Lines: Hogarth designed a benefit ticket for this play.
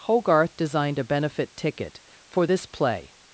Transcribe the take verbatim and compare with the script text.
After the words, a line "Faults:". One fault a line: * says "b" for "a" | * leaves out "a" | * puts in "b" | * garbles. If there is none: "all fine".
Hogarth designed a benefit ticket for this play.
Faults:
all fine